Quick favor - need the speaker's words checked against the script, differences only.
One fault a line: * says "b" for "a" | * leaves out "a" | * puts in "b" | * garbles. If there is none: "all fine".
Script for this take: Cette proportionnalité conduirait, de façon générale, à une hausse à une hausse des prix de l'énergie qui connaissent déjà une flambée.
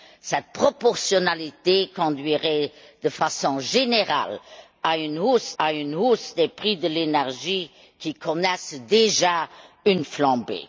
all fine